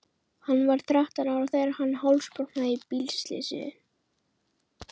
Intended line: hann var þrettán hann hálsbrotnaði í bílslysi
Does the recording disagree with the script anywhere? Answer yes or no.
yes